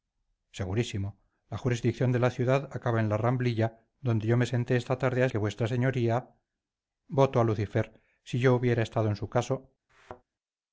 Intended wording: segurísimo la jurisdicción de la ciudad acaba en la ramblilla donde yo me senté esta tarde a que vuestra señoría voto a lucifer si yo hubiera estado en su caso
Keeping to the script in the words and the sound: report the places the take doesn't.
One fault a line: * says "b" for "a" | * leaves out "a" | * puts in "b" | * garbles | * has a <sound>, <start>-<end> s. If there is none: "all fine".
* has a thud, 9.9-10.2 s